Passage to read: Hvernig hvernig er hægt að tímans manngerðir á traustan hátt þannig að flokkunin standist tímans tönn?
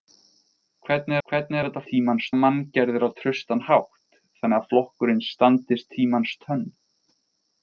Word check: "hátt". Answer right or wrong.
right